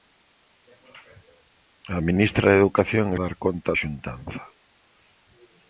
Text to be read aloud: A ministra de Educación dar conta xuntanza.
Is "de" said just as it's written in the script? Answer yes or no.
yes